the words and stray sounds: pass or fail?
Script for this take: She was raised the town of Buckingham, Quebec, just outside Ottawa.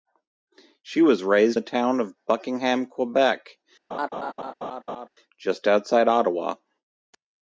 fail